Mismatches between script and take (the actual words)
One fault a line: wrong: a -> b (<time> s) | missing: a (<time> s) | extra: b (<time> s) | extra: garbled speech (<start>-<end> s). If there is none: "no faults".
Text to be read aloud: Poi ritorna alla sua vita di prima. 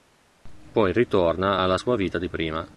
no faults